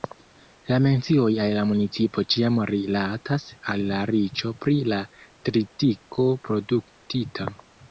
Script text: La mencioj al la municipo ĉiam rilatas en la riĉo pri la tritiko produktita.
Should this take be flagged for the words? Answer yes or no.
yes